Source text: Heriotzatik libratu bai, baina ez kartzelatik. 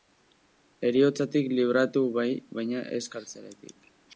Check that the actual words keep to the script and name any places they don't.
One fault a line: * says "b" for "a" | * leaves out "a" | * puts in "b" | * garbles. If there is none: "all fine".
all fine